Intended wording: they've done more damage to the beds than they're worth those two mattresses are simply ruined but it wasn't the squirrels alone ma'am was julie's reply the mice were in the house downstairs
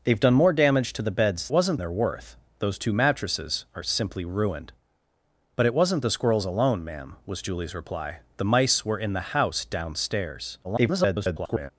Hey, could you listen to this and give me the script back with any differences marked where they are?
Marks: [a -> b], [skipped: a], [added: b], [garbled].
they've done more damage to the beds [than -> wasn't] they're worth those two mattresses are simply ruined but it wasn't the squirrels alone ma'am was julie's reply the mice were in the house downstairs [garbled]